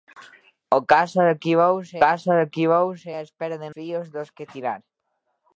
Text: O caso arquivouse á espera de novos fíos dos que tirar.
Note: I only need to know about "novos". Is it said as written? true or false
false